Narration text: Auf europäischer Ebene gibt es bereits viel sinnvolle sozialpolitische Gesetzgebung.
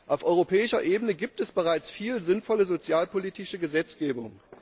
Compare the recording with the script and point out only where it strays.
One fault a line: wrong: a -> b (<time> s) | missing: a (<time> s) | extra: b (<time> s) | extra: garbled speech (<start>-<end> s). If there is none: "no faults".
no faults